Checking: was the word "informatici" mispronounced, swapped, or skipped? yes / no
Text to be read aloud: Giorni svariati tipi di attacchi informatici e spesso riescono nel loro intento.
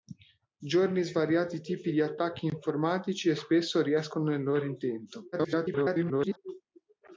no